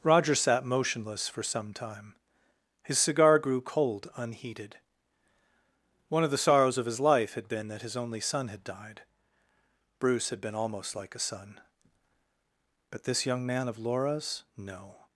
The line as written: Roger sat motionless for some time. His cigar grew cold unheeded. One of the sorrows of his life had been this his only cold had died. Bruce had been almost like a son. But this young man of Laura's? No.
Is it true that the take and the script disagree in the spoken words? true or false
true